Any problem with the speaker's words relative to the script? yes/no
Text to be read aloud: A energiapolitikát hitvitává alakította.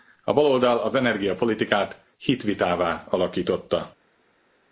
yes